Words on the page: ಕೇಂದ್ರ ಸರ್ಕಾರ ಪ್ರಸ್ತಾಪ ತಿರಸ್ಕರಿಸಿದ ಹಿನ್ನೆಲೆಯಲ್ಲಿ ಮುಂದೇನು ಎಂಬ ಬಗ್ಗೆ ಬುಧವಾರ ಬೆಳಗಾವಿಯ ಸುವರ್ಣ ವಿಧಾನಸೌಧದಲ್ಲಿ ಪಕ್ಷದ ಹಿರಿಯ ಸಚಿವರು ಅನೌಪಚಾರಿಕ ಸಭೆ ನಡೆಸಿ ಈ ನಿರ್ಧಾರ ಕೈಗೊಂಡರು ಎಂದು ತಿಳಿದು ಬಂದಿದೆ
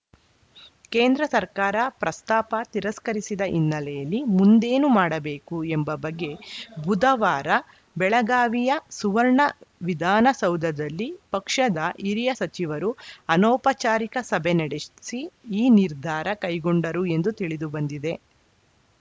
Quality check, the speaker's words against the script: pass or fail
fail